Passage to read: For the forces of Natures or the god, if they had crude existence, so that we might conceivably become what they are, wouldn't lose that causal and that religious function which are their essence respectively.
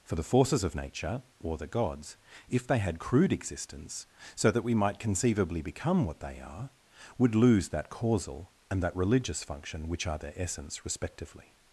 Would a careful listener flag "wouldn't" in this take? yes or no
yes